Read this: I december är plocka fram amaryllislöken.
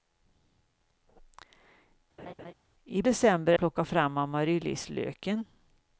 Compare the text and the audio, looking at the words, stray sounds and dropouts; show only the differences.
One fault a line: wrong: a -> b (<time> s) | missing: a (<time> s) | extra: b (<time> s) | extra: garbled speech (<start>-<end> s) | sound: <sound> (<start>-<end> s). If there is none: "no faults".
sound: laugh (2.2-2.5 s)